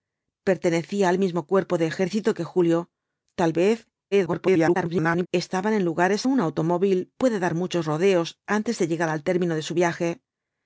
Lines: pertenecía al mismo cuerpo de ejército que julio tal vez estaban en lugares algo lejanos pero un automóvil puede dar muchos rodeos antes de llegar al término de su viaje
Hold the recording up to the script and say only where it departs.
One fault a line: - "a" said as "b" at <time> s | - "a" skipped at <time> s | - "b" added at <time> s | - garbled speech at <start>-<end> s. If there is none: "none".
- garbled speech at 4.1-5.3 s
- "algo lejanos pero" skipped at 6.3 s